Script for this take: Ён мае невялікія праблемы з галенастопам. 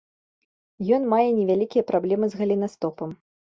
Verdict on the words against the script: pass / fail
pass